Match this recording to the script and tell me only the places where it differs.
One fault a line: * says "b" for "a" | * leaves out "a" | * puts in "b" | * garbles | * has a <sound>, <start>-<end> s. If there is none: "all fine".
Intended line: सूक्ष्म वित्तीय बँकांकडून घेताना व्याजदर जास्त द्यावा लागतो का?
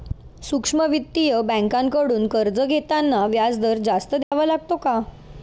* puts in "कर्ज"
* has a dropout, 4.2-4.3 s